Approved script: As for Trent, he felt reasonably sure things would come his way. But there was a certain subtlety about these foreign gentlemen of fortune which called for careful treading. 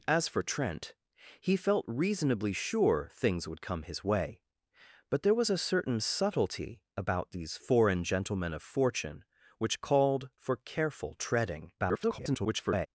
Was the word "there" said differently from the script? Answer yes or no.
no